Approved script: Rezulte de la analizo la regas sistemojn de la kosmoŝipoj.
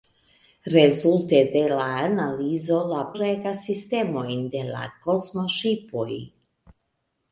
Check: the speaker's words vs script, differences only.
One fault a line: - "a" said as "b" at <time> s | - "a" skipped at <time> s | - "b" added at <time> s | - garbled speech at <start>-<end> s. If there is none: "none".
none